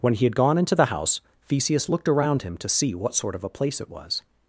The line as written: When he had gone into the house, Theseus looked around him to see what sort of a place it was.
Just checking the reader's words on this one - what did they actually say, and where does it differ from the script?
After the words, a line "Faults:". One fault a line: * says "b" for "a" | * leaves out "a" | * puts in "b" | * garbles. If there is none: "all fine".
When he had gone into the house, Theseus looked around him to see what sort of a place it was.
Faults:
all fine